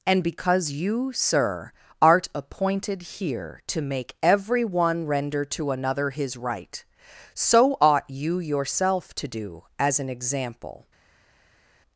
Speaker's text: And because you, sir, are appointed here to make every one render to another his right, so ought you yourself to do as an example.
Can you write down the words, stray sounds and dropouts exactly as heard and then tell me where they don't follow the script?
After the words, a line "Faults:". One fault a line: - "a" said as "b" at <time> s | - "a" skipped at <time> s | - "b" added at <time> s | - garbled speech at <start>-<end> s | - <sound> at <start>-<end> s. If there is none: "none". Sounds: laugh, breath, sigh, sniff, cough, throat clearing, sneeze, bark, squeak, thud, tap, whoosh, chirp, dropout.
And because you, sir, art appointed here to make every one render to another his right, so ought you yourself to do as an example.
Faults:
- "are" said as "art" at 2.0 s